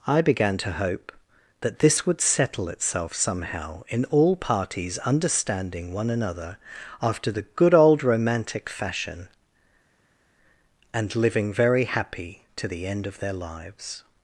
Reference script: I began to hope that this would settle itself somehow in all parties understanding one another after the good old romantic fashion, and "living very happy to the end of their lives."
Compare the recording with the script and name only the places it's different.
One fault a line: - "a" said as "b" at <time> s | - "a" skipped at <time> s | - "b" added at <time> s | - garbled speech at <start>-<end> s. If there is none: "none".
none